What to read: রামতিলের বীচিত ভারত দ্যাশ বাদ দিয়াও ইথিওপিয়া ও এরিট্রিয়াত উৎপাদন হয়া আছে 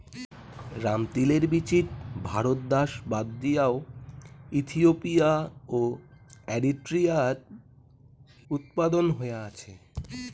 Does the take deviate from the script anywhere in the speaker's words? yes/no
no